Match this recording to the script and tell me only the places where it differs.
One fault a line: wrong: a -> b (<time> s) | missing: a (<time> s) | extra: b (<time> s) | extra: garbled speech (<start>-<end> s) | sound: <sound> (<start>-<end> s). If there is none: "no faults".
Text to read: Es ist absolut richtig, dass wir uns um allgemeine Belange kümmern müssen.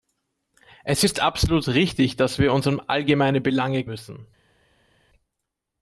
missing: kümmern (3.9 s)